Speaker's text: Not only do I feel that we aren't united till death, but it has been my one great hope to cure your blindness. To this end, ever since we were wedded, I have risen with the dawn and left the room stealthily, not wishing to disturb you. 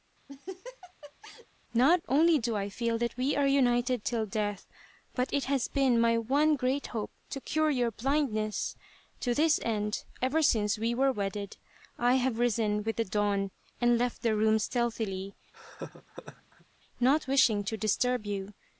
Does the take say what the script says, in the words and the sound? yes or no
no